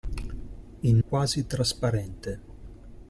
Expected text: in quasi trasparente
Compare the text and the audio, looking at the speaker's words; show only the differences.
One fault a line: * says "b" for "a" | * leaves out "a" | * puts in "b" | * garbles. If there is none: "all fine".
all fine